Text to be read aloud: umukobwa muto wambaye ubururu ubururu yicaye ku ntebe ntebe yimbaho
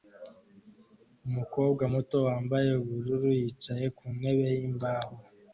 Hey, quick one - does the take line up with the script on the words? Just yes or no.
no